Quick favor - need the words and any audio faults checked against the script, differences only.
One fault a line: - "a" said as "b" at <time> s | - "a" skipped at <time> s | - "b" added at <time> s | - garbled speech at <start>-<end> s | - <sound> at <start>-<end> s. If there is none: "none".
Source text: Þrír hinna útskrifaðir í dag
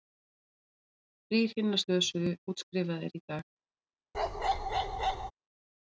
- "slösuðu" added at 1.8 s
- bark at 4.1-5.3 s